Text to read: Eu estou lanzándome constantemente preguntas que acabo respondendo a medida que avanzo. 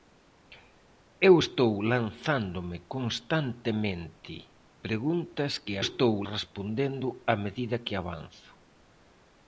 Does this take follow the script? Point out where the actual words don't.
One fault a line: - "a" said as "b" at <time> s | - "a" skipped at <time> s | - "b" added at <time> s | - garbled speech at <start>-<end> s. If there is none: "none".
- "acabo" said as "estou" at 5.9 s